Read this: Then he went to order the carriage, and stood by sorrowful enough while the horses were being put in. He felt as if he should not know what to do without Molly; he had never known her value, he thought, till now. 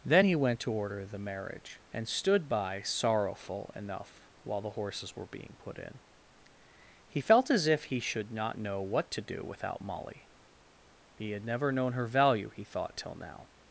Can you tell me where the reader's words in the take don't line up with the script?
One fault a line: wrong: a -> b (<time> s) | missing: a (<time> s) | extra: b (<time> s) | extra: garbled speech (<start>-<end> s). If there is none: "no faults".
wrong: carriage -> marriage (1.2 s)